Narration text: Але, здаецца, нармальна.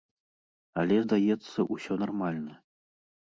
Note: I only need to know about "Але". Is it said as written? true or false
true